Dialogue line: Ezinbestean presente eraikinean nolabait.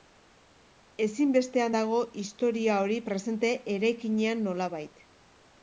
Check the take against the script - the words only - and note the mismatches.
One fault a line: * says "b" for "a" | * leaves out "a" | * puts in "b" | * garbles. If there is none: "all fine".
* puts in "dago historia hori"